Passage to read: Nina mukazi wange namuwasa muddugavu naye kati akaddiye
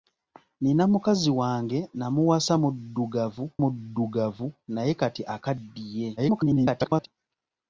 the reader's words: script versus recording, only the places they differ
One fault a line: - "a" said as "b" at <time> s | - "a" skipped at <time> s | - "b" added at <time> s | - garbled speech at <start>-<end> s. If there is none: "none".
- "muddugavu" added at 3.6 s
- garbled speech at 6.2-7.1 s